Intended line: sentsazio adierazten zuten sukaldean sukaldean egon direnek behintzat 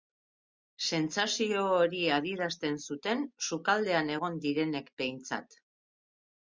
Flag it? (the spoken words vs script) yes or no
yes